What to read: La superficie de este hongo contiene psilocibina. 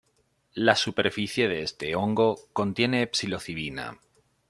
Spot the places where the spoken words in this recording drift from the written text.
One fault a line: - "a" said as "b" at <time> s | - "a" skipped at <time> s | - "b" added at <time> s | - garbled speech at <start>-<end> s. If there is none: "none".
none